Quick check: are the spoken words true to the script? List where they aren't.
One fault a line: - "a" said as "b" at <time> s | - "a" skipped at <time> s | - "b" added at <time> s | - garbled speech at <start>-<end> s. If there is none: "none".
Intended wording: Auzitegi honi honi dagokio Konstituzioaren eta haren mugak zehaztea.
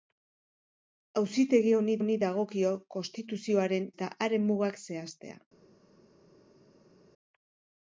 none